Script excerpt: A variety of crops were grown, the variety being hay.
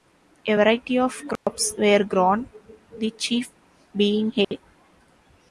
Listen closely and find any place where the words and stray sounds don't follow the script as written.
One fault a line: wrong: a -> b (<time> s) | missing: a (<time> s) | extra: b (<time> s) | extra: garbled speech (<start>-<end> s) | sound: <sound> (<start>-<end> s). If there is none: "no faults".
sound: dropout (1.4-1.5 s)
wrong: variety -> chief (3.1 s)
sound: dropout (4.4-4.5 s)